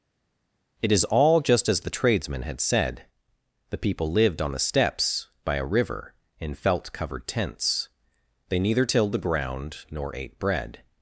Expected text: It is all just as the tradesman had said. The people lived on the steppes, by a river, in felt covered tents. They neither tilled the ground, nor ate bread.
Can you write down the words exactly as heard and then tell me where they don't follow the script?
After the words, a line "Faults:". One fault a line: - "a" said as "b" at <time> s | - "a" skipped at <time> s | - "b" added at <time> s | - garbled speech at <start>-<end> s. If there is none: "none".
It is all just as the tradesman had said. The people lived on the steppes, by a river, in felt covered tents. They neither tilled the ground, nor ate bread.
Faults:
none